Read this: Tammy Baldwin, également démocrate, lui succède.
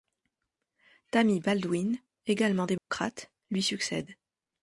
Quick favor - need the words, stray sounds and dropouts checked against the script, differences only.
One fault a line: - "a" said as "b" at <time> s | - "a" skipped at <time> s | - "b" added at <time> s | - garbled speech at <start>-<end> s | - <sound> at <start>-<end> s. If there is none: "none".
- dropout at 2.8-2.9 s